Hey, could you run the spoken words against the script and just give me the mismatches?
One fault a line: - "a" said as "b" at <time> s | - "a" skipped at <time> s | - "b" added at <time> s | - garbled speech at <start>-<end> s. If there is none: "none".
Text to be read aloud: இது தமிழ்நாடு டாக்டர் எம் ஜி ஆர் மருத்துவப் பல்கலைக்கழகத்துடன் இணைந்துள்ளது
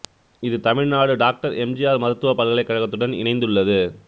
none